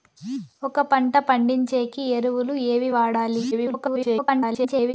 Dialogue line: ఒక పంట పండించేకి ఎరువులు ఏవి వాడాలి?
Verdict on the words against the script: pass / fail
fail